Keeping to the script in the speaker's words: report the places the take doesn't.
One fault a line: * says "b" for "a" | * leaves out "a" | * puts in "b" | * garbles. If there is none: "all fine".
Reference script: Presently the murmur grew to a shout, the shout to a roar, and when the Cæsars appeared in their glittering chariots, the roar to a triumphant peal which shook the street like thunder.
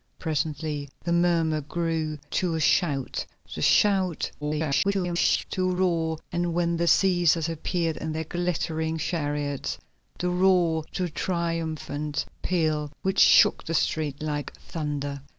* garbles